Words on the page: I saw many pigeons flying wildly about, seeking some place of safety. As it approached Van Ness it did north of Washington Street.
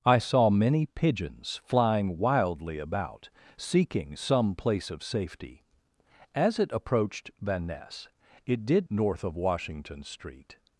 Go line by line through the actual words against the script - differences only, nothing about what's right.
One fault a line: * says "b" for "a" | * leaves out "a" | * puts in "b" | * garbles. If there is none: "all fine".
all fine